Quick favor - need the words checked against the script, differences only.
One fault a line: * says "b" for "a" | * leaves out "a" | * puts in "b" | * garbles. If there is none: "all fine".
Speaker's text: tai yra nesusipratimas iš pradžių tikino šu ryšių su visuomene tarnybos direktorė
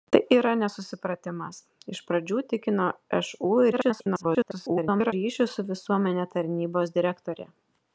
* garbles